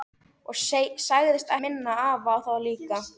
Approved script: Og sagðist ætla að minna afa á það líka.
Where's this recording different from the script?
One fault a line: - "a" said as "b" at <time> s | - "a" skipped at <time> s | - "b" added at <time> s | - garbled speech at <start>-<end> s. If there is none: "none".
- "ætla" skipped at 1.5 s